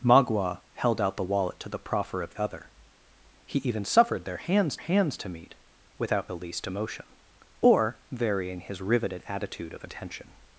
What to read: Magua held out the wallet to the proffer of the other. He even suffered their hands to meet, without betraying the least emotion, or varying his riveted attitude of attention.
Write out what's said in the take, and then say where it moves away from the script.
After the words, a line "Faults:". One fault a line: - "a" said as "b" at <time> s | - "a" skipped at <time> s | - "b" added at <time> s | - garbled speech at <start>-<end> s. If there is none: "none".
Magua held out the wallet to the proffer of other. He even suffered their hands hands to meet, without the least emotion, or varying his riveted attitude of attention.
Faults:
- "the" skipped at 2.3 s
- "hands" added at 4.8 s
- "betraying" skipped at 6.3 s